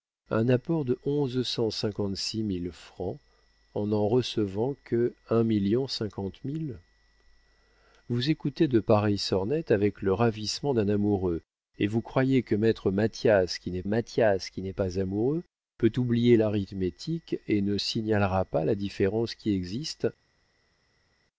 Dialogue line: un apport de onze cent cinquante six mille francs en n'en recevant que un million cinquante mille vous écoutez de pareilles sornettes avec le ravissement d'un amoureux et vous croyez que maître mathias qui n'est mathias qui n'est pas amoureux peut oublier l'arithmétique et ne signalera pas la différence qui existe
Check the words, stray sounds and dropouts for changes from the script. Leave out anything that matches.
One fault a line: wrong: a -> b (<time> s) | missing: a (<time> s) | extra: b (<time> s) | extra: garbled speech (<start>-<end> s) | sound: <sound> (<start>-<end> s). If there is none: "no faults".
no faults